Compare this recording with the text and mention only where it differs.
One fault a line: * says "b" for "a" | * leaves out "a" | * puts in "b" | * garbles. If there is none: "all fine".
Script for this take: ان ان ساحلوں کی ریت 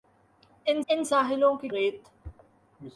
all fine